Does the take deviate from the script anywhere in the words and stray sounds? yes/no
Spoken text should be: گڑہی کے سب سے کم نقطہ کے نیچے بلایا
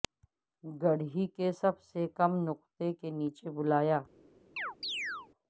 yes